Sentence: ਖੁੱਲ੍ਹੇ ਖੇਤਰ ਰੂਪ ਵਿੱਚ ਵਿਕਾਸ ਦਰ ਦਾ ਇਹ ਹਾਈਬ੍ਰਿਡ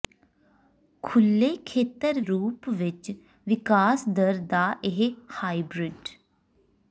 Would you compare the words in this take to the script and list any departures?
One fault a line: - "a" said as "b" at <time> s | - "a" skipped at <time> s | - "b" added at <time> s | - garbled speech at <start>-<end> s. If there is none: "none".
none